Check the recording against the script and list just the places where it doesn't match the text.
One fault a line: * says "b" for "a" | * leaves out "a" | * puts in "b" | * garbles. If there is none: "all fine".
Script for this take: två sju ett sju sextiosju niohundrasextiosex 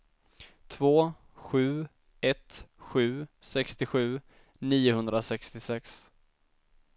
all fine